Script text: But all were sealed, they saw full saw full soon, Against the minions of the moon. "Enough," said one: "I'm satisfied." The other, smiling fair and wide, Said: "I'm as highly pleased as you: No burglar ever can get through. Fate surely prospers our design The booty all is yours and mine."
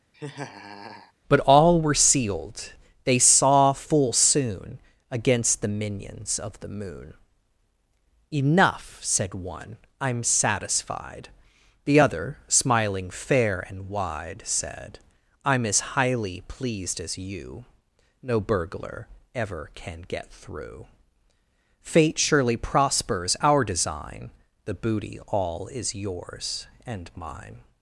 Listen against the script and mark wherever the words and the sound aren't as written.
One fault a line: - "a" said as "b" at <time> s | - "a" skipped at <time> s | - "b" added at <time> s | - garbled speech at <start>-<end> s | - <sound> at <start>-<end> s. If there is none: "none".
- laugh at 0.1-1.1 s
- "saw full" skipped at 4.1 s